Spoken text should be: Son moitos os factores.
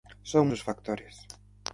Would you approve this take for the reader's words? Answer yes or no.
no